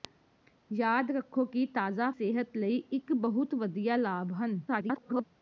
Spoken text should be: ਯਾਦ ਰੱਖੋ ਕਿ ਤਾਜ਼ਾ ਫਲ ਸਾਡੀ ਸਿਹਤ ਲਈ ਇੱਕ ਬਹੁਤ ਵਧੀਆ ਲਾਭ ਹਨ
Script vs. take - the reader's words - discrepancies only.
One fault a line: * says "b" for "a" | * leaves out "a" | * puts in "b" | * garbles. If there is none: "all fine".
* leaves out "ਫਲ ਸਾਡੀ"
* garbles